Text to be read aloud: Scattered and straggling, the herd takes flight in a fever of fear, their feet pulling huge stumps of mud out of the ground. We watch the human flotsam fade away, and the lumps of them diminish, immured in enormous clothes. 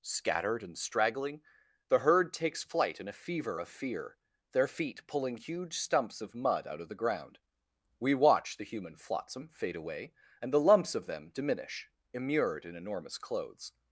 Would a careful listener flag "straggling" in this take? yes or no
no